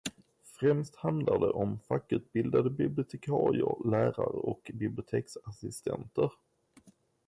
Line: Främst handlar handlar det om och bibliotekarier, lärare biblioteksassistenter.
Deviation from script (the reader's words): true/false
true